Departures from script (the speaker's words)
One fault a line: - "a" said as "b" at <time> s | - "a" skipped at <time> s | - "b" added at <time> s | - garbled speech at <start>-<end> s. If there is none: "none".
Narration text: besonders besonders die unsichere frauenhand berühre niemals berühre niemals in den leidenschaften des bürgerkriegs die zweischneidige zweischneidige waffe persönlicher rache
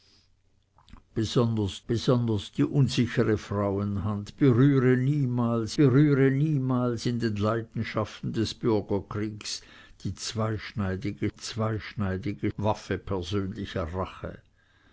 none